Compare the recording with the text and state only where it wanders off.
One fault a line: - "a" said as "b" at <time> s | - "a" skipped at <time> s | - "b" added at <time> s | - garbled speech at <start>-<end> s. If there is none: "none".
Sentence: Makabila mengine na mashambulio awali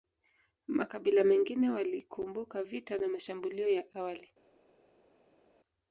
- "walikumbuka vita" added at 1.7 s
- "ya" added at 3.7 s